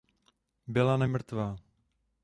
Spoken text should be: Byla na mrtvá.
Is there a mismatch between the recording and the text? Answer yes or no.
no